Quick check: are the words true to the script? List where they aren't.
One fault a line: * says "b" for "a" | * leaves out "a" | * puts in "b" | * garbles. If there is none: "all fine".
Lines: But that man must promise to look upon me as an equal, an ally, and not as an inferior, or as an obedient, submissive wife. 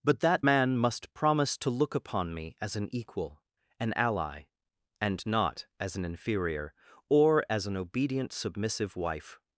all fine